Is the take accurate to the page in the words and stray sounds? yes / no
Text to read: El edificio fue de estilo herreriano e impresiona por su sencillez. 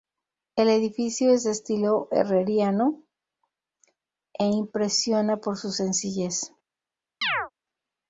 no